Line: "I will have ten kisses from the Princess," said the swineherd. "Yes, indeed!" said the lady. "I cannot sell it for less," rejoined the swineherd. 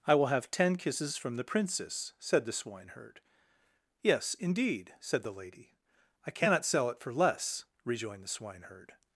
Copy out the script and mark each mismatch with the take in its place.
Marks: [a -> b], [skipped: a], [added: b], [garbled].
"I will have ten kisses from the Princess," said the swineherd. "Yes, indeed!" said the lady. "I cannot sell it for less," rejoined the swineherd.